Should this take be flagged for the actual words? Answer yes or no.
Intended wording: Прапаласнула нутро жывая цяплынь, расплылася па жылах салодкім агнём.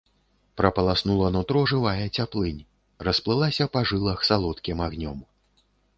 no